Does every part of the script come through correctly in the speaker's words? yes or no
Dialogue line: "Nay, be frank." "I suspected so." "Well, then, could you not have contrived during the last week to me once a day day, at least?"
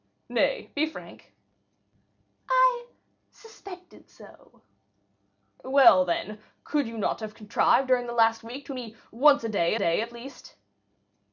yes